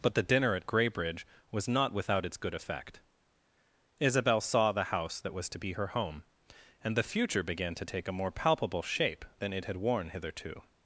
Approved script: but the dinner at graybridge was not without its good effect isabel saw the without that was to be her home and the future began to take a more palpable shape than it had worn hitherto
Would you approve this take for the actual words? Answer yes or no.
no